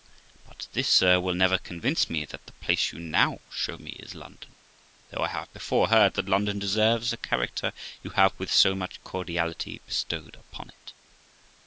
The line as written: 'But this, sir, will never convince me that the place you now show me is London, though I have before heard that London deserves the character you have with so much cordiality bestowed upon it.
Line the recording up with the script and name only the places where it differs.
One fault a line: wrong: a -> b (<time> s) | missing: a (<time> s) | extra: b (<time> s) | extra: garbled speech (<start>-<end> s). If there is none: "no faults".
no faults